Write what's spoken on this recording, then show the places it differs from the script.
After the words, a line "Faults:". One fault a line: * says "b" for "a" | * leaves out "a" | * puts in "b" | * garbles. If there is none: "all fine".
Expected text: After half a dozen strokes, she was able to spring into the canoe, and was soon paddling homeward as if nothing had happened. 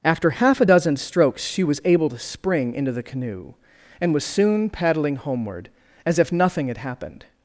After half a dozen strokes, she was able to spring into the canoe, and was soon paddling homeward as if nothing had happened.
Faults:
all fine